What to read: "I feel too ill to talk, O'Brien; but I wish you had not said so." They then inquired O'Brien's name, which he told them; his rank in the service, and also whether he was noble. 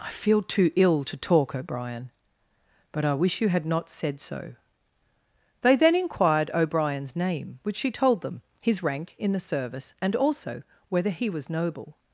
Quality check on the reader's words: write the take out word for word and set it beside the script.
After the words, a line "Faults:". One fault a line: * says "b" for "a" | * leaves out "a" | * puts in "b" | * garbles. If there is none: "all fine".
"I feel too ill to talk, O'Brien; but I wish you had not said so." They then inquired O'Brien's name, which she told them; his rank in the service, and also whether he was noble.
Faults:
* says "she" for "he"